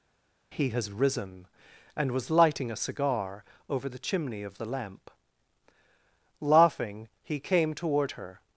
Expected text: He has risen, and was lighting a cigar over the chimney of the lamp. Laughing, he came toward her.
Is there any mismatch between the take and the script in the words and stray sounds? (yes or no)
no